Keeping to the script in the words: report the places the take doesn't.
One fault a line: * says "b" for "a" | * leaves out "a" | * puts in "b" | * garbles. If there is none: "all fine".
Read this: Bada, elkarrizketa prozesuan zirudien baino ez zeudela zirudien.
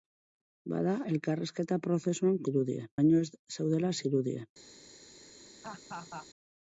all fine